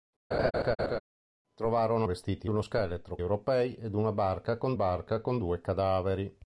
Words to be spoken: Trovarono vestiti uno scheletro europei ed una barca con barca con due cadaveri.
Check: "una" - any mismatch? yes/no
no